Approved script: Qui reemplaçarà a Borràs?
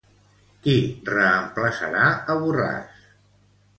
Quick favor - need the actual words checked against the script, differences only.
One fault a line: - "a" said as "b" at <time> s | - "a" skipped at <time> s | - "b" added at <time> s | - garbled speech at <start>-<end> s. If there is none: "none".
none